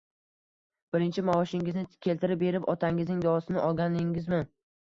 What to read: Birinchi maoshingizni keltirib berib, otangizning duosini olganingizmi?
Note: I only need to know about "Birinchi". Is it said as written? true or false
true